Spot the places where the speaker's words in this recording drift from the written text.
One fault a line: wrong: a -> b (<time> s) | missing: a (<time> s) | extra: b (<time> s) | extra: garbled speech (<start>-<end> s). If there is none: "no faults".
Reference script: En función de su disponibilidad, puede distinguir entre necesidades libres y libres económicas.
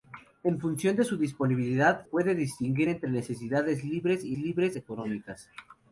no faults